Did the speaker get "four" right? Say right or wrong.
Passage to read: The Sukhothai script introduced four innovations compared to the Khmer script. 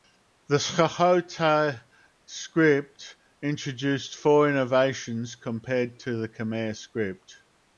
right